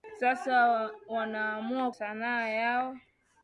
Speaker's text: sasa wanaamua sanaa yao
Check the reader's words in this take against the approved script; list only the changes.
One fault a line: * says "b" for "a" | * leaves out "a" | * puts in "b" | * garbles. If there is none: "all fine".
all fine